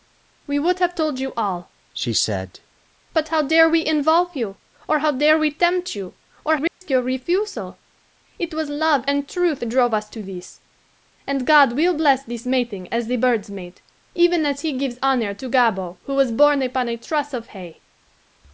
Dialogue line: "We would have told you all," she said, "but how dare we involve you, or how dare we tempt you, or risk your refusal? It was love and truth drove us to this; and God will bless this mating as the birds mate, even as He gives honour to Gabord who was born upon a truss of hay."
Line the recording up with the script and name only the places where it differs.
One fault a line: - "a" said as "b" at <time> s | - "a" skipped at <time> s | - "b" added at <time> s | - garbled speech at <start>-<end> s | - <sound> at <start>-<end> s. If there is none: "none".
- dropout at 6.7-6.8 s